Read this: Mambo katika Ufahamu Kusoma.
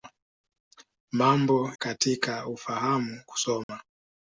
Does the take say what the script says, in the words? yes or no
yes